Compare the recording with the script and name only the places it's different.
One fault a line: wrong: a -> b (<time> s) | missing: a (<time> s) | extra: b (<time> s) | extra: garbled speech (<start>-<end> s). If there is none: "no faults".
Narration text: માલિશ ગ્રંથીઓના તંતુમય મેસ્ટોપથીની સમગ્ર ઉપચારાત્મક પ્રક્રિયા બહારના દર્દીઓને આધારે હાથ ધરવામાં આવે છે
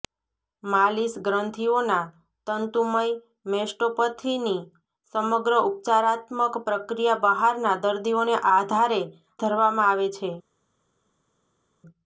missing: હાથ (9.0 s)